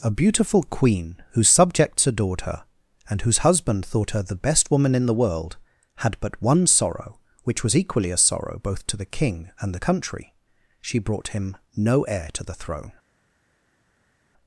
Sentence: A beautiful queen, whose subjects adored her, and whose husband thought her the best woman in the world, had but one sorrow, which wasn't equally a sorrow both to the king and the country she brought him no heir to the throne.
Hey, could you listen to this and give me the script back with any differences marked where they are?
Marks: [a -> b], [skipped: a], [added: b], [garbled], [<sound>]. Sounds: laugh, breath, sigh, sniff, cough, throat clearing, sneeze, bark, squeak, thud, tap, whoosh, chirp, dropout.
A beautiful queen, whose subjects adored her, and whose husband thought her the best woman in the world, had but one sorrow, which [wasn't -> was] equally a sorrow both to the king and the country she brought him no heir to the throne.